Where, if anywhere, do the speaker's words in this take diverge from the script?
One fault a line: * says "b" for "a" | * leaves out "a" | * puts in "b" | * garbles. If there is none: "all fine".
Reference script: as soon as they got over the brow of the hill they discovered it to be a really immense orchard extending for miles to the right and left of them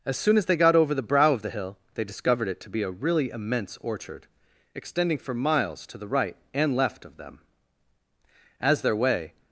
* puts in "as their way"